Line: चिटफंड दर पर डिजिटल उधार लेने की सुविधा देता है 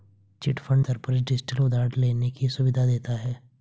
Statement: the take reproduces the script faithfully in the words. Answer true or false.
true